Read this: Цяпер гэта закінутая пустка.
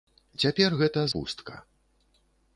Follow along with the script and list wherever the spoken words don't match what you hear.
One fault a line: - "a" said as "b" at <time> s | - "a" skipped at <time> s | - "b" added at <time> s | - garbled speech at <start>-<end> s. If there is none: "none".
- "закінутая" skipped at 1.0 s